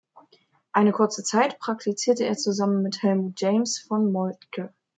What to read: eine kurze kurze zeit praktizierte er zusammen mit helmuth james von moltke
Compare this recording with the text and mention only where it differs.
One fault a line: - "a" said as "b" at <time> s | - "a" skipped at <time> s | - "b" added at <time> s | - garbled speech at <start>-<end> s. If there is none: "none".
- "kurze" skipped at 1.2 s